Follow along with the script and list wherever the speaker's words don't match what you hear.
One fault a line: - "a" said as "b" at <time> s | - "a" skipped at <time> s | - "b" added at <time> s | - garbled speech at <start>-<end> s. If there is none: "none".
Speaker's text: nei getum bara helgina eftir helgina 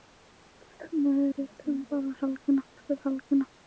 none